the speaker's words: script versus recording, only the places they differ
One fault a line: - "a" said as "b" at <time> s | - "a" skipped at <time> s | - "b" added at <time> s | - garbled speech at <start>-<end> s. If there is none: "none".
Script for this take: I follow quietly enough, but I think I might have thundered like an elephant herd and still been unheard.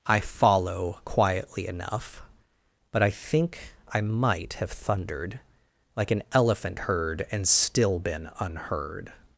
none